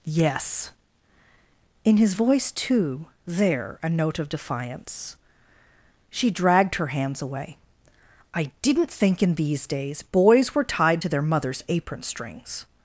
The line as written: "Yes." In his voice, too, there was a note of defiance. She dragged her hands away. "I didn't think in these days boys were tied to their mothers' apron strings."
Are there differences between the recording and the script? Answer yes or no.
yes